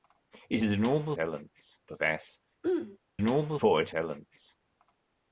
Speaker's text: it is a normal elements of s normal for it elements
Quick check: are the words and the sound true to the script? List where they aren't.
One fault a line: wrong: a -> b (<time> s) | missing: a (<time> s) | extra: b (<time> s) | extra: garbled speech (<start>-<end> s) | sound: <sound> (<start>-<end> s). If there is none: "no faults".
sound: throat clearing (2.6-3.0 s)